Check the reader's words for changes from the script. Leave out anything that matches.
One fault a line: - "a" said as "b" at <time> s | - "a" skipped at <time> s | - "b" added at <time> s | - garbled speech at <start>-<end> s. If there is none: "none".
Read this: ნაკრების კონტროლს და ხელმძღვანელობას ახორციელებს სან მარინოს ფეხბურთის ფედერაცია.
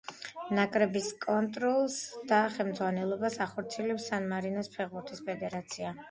none